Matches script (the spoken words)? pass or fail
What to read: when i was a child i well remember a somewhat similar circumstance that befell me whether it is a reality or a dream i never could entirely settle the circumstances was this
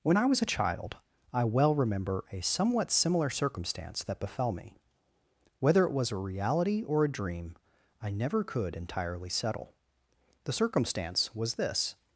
fail